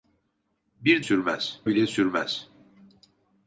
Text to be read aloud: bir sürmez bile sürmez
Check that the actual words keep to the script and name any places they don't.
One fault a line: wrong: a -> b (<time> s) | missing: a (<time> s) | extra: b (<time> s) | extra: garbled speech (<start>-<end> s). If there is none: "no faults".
no faults